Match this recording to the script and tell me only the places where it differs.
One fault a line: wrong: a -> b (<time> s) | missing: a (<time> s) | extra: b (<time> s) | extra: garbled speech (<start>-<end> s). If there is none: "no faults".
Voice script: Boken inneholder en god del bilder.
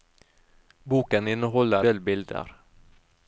missing: en god (1.9 s)